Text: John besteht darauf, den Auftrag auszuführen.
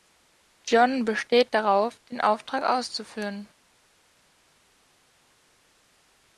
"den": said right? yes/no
yes